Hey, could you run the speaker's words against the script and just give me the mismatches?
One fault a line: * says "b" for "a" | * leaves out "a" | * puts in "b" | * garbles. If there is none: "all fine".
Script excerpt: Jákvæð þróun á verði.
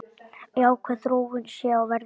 * puts in "sé"